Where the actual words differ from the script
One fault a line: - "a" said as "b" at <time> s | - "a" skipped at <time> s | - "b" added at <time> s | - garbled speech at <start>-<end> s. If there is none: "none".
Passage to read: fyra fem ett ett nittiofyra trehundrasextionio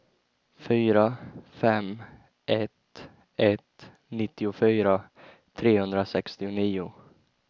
none